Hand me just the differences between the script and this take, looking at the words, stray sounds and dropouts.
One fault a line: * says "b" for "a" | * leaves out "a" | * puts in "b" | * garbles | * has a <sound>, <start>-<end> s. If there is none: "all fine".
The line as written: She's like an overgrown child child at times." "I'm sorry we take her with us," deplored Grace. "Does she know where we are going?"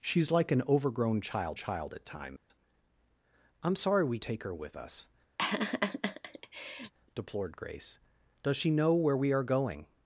* has a dropout, 2.4-2.5 s
* has a laugh, 5.4-6.9 s